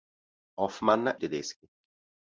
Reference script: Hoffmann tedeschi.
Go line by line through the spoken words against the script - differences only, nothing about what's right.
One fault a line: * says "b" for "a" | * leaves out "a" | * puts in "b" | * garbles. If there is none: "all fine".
all fine